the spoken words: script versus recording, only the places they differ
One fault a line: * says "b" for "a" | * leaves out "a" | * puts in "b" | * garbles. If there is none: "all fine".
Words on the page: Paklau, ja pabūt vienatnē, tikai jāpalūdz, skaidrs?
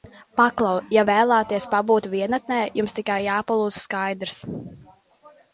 * puts in "vēlaties"
* puts in "jums"